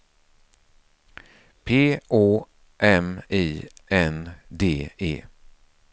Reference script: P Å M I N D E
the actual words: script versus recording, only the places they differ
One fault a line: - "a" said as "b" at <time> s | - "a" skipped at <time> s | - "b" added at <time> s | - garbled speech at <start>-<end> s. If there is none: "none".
none